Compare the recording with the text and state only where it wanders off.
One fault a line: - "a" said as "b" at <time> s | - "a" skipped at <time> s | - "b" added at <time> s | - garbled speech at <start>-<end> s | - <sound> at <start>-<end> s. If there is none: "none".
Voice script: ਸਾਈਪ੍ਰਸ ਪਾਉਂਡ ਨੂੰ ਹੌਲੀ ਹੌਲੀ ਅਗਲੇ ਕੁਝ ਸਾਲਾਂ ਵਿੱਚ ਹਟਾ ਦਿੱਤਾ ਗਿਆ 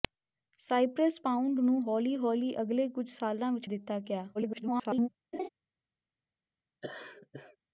- "ਹਟਾ" skipped at 3.7 s
- garbled speech at 4.3-5.1 s
- laugh at 5.3-5.5 s
- laugh at 6.8-7.6 s